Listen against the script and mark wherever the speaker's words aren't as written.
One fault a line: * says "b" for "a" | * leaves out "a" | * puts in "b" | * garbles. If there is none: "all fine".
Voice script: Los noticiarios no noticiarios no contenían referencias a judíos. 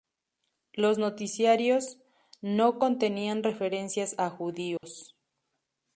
* leaves out "noticiarios no"